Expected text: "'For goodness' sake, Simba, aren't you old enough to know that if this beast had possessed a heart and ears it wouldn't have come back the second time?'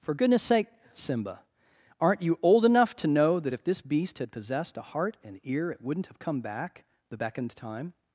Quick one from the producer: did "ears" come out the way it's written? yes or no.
no